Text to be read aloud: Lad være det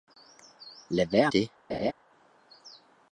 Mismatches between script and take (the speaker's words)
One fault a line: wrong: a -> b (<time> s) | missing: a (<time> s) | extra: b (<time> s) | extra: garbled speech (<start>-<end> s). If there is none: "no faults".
no faults